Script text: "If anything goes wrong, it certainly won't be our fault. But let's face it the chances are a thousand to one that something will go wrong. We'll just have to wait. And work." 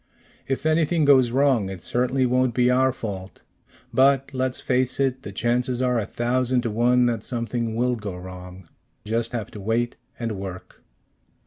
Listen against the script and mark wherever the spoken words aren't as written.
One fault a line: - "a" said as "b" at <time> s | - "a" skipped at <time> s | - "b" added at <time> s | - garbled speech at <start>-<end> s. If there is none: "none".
- "We'll" skipped at 8.7 s